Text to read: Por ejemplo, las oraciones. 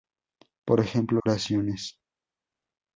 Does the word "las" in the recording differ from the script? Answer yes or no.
yes